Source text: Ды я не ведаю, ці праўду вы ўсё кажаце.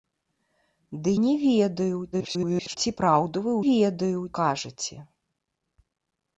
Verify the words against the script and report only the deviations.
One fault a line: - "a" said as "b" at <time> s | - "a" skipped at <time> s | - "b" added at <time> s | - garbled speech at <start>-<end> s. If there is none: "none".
- "я" skipped at 1.1 s
- garbled speech at 2.1-2.8 s
- "ўсё" said as "ведаю" at 3.7 s